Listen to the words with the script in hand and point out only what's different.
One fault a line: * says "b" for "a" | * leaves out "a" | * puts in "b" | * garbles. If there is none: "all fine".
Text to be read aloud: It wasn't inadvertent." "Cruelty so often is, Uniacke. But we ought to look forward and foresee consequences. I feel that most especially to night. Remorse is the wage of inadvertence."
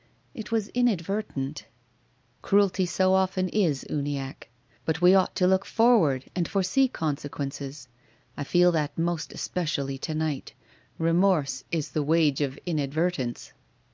* says "was" for "wasn't"